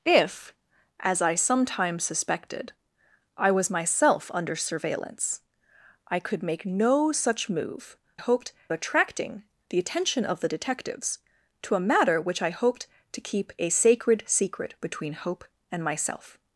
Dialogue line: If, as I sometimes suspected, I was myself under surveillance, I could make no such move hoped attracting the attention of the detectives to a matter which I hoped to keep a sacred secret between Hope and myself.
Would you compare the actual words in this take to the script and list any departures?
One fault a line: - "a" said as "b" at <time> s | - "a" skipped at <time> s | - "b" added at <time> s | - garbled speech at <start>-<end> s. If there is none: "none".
none